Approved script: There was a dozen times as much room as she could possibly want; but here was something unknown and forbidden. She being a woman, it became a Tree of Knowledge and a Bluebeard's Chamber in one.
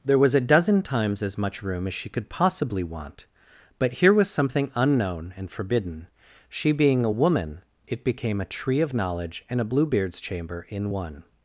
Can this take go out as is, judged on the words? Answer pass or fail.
pass